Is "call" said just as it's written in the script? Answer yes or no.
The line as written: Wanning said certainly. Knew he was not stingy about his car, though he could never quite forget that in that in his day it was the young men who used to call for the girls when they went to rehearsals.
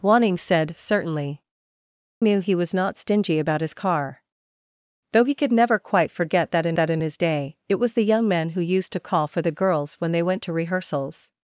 yes